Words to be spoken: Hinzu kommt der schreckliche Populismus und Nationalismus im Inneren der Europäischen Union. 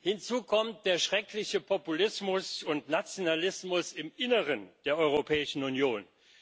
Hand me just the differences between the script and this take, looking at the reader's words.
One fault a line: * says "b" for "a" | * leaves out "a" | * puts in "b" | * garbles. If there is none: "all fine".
all fine